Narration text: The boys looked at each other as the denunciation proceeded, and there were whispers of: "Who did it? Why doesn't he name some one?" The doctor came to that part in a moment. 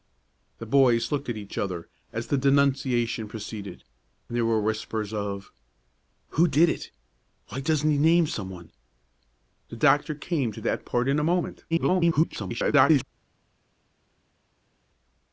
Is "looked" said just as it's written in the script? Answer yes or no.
yes